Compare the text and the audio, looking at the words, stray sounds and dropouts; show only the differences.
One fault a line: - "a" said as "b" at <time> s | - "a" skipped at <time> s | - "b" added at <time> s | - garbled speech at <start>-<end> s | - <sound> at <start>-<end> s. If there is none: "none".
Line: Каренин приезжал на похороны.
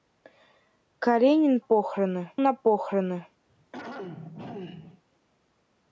- "приезжал" said as "похороны" at 1.6 s
- throat clearing at 3.5-5.0 s